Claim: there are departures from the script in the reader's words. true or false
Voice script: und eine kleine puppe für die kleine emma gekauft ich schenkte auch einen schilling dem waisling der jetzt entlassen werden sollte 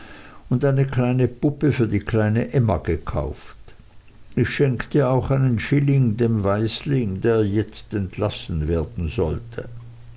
false